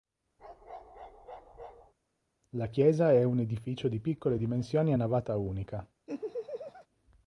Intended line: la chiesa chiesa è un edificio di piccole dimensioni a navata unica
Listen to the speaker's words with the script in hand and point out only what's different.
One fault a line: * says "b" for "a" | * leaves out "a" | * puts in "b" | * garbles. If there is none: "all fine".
* leaves out "chiesa"